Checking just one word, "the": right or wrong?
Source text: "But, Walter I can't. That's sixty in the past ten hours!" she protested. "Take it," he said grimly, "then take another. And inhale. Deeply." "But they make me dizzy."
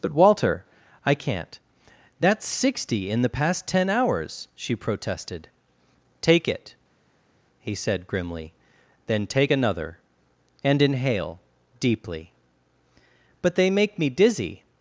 right